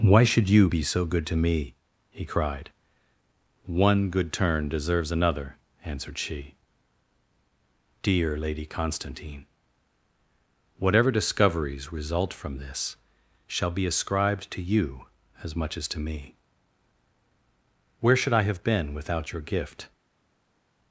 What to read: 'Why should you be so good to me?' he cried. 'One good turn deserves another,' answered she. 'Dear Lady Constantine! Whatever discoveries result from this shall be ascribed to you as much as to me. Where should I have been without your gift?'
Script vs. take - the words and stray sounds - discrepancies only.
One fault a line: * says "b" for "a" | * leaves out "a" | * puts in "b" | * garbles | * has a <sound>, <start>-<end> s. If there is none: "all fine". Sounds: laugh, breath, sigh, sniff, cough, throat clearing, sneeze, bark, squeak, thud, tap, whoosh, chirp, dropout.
all fine